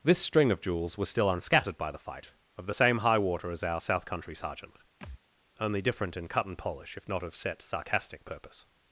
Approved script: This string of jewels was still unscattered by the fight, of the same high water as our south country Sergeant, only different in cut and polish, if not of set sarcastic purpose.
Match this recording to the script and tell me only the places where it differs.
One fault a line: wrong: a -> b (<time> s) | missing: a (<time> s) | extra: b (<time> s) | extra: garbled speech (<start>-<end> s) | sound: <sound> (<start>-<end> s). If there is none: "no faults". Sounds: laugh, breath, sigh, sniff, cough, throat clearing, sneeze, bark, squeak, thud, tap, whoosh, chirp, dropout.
sound: thud (5.0-5.2 s)